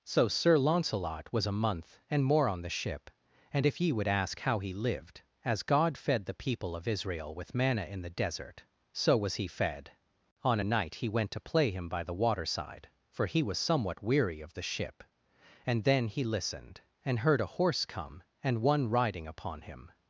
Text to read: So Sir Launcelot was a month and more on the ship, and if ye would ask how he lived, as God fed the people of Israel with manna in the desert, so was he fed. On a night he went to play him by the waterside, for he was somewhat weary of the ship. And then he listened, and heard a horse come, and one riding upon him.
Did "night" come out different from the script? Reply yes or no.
no